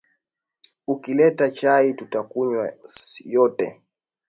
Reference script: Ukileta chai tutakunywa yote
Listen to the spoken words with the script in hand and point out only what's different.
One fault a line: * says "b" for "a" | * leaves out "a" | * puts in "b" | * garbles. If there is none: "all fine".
all fine